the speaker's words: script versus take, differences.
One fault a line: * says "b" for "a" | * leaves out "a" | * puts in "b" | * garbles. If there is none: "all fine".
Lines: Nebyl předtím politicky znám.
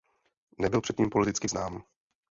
all fine